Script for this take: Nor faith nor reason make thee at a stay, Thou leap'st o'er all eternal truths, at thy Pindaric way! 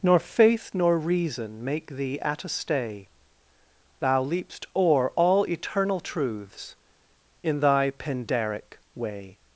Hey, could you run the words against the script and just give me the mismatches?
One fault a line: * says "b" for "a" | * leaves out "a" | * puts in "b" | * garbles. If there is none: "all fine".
* says "in" for "at"